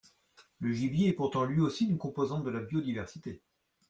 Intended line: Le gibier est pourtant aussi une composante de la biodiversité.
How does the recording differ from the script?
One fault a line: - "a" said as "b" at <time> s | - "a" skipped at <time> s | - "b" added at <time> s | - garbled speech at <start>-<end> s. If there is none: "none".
- "lui" added at 1.4 s